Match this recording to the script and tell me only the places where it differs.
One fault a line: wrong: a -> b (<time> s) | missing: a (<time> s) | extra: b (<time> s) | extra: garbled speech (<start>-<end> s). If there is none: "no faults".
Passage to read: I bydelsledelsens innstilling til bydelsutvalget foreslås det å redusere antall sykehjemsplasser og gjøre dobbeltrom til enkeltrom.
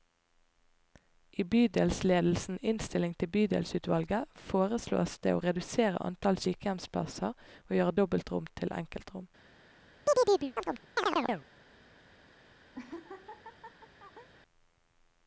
no faults